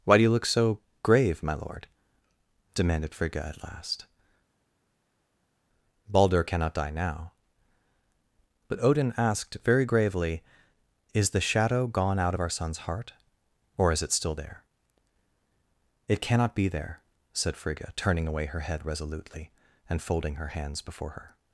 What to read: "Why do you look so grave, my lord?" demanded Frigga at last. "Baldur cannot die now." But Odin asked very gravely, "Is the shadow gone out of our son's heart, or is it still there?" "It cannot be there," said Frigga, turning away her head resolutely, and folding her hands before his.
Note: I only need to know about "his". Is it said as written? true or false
false